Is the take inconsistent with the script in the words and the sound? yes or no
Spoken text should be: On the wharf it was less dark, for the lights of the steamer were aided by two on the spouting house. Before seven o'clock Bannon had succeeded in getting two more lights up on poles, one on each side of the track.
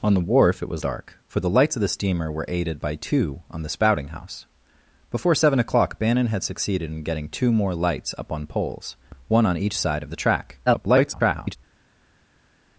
yes